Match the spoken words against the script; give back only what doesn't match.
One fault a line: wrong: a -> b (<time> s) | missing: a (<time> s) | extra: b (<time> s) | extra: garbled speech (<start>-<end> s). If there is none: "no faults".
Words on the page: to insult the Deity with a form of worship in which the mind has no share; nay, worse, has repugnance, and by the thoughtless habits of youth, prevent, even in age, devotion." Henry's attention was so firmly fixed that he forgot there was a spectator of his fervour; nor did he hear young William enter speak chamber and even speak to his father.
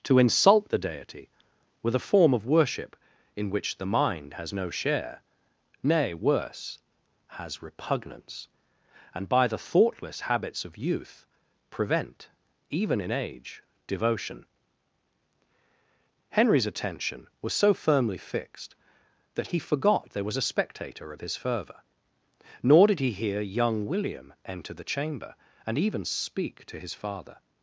wrong: speak -> the (24.7 s)